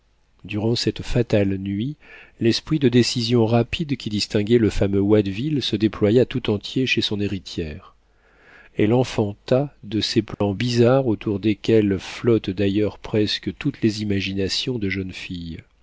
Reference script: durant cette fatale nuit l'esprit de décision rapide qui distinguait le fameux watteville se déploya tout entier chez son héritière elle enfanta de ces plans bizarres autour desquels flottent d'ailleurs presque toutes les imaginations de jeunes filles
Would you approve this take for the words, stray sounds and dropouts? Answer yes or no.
no